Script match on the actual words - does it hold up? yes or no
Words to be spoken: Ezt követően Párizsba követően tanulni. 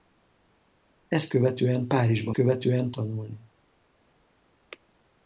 yes